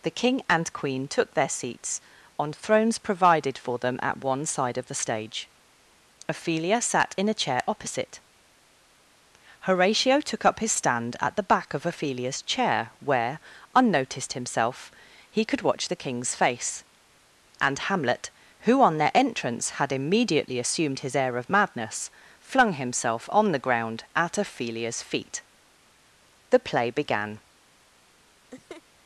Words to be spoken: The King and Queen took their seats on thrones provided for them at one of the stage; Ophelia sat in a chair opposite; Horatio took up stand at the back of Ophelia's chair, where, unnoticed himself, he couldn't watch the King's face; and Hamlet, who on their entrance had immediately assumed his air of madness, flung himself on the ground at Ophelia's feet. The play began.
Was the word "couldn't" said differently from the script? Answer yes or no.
yes